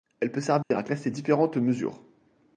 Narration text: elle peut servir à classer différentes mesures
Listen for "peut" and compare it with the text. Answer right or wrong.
right